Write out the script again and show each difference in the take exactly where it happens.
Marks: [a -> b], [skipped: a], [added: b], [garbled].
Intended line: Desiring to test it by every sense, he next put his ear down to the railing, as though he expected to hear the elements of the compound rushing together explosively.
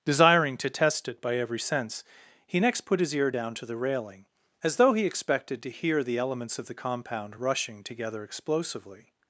Desiring to test it by every sense, he next put his ear down to the railing, as though he expected to hear the elements of the compound rushing together explosively.